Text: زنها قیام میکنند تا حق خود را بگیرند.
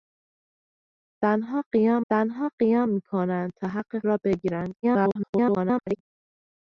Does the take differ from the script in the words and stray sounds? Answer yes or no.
yes